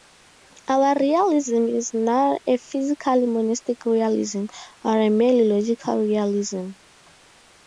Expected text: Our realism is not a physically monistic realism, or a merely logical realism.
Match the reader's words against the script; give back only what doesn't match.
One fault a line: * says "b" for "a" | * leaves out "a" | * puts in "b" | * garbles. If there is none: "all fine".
all fine